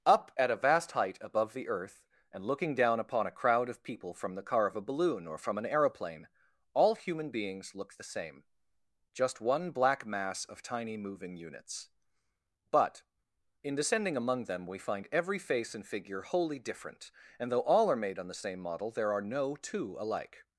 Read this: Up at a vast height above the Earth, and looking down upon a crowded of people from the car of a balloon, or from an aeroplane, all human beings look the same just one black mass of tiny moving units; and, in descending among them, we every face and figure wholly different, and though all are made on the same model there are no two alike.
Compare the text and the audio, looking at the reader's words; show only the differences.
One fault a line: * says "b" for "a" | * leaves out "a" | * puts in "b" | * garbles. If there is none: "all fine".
* says "crowd" for "crowded"
* says "but" for "and"
* puts in "find"